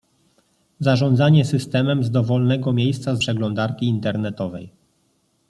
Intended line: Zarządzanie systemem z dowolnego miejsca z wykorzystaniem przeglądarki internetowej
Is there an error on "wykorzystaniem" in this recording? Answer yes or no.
yes